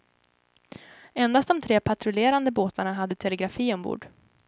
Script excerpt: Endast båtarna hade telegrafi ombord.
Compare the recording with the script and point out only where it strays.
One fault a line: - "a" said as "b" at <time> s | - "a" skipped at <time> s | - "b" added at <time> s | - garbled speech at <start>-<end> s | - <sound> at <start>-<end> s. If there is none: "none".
- "de tre patrullerande" added at 1.5 s